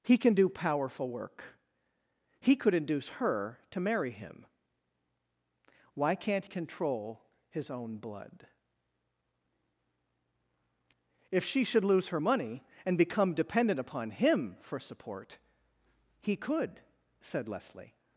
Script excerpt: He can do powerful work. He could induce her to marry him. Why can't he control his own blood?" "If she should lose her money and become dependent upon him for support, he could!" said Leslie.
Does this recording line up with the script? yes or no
no